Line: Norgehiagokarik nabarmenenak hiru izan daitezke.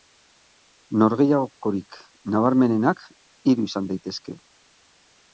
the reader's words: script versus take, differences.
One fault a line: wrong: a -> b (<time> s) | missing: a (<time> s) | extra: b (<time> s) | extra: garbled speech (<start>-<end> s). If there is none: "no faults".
no faults